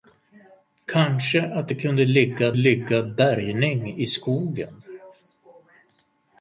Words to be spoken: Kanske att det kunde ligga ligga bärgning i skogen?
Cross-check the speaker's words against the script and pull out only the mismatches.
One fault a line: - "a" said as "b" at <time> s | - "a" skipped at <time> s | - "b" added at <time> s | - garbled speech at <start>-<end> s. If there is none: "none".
none